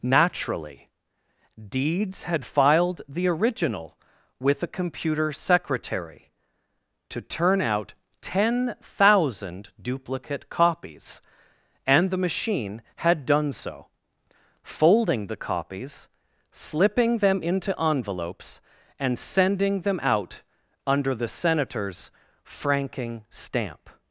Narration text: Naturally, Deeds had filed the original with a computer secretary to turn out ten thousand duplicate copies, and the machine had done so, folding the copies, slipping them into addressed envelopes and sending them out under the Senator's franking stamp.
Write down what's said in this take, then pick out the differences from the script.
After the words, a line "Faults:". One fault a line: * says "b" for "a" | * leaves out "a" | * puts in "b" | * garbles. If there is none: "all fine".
Naturally, Deeds had filed the original with a computer secretary to turn out ten thousand duplicate copies, and the machine had done so, folding the copies, slipping them into envelopes and sending them out under the Senator's franking stamp.
Faults:
* leaves out "addressed"